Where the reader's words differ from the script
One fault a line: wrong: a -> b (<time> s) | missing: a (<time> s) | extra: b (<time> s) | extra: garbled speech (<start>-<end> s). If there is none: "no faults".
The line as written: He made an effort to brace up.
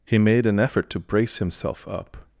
extra: himself (1.4 s)